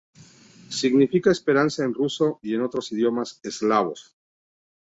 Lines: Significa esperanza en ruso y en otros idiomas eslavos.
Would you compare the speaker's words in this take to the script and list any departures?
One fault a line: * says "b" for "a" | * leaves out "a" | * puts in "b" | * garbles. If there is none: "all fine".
all fine